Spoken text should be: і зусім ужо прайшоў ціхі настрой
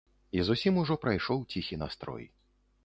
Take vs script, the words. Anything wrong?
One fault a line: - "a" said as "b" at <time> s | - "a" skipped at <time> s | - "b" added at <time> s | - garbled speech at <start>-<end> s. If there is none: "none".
none